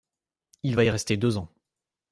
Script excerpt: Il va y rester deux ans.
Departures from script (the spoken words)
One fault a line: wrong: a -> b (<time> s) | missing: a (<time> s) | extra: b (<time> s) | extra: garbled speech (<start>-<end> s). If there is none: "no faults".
no faults